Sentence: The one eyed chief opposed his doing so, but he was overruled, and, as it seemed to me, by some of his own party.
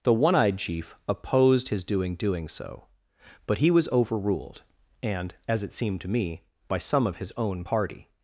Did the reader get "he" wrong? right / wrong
right